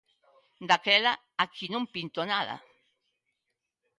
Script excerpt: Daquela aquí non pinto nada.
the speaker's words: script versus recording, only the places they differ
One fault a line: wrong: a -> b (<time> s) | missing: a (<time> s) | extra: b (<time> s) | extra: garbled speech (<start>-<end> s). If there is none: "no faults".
no faults